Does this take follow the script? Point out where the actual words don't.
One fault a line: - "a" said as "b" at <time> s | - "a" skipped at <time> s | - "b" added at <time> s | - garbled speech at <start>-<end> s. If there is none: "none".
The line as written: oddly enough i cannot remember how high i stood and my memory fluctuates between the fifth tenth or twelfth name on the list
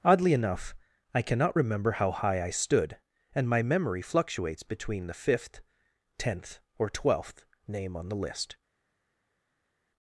none